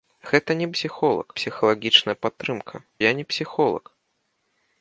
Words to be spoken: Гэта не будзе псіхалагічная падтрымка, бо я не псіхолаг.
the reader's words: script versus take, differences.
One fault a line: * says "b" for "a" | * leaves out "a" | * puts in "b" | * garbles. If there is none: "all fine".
* says "псіхолаг" for "будзе"
* leaves out "бо"